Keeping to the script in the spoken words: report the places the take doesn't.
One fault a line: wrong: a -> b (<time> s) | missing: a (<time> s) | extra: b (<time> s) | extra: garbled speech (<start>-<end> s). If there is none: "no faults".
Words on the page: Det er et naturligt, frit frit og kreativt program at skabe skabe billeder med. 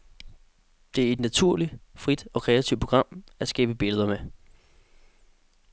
missing: frit (2.3 s)
missing: skabe (3.7 s)